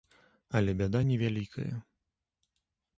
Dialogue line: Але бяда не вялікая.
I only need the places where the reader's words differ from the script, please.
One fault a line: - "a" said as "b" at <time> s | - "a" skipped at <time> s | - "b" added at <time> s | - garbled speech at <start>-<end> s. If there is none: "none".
none